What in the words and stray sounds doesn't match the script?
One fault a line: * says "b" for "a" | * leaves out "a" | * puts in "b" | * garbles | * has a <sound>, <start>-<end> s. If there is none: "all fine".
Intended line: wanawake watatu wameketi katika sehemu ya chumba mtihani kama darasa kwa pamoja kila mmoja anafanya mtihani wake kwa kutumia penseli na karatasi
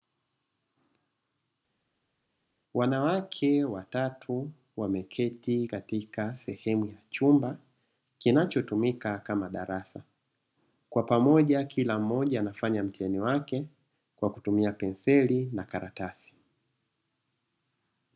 * says "kinachotumika" for "mtihani"